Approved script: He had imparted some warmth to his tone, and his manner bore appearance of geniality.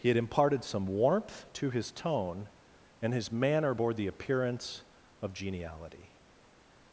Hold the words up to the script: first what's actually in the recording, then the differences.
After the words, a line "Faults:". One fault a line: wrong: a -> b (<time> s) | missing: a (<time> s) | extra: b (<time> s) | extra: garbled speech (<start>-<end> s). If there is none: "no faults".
He had imparted some warmth to his tone, and his manner bore the appearance of geniality.
Faults:
extra: the (3.9 s)